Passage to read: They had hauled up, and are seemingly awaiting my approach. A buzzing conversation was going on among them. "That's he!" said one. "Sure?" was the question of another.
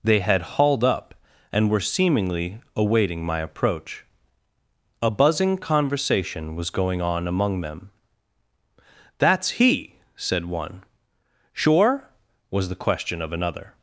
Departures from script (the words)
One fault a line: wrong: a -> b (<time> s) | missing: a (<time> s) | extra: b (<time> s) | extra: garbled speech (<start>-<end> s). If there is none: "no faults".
wrong: are -> were (1.7 s)